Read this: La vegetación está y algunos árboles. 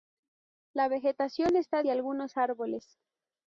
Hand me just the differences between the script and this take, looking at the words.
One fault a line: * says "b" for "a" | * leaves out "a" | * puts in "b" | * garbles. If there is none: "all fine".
all fine